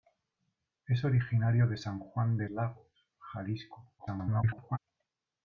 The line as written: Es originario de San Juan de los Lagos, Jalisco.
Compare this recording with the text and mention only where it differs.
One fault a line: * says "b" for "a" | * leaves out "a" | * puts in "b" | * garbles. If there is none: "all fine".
* leaves out "los"
* garbles